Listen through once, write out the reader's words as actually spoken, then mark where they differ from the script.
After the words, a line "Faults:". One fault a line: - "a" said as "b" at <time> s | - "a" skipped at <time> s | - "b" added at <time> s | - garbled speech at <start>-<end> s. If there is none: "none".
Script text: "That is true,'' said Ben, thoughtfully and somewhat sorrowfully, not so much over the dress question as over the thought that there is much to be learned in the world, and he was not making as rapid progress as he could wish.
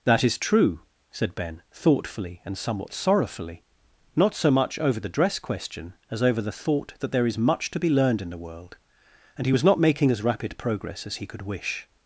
"That is true,'' said Ben, thoughtfully and somewhat sorrowfully, not so much over the dress question as over the thought that there is much to be learned in the world, and he was not making as rapid progress as he could wish.
Faults:
none